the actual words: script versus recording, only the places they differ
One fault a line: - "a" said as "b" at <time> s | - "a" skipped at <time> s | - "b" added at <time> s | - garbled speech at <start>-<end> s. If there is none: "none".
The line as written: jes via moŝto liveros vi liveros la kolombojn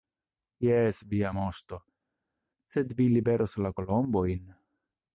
- "liveros" said as "sed" at 2.7 s